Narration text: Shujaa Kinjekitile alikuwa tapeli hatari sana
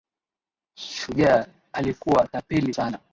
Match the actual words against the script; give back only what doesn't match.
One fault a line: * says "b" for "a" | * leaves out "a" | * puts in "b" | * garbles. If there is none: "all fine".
* leaves out "Kinjekitile"
* leaves out "hatari"